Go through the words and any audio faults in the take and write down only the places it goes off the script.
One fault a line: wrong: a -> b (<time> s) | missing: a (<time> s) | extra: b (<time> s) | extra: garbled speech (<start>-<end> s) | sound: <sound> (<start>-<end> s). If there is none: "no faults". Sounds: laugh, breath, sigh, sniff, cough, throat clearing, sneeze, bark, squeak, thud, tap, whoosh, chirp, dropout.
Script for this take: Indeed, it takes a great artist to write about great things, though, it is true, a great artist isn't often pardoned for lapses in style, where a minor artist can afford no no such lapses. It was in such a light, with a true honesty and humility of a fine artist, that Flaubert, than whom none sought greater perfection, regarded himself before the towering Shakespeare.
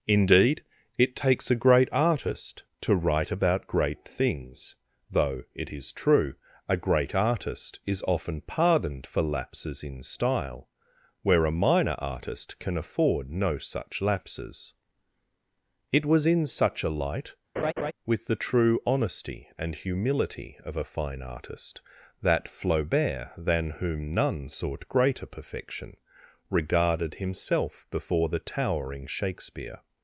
wrong: isn't -> is (7.8 s)
missing: no (13.6 s)
sound: laugh (17.6-17.9 s)
wrong: a -> the (18.3 s)